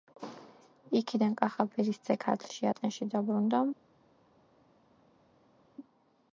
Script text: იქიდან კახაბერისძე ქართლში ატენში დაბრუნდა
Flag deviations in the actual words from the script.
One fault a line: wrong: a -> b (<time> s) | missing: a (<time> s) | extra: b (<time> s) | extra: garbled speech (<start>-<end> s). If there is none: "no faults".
no faults